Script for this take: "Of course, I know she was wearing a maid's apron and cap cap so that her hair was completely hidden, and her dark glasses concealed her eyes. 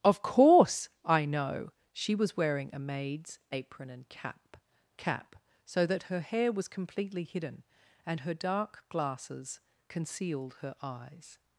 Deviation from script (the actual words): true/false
false